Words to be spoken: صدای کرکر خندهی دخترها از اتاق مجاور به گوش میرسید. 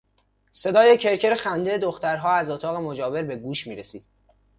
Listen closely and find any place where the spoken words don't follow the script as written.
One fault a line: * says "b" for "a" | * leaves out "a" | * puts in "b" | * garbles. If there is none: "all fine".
all fine